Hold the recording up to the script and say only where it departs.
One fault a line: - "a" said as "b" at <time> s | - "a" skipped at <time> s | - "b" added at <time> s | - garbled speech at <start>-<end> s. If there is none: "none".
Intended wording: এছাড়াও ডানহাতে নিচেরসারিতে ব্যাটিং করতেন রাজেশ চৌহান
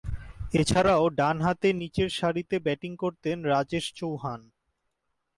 none